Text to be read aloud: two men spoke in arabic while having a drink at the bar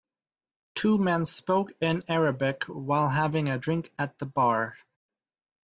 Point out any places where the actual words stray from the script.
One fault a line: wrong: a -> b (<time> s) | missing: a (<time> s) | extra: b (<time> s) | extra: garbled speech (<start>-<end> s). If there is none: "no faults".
no faults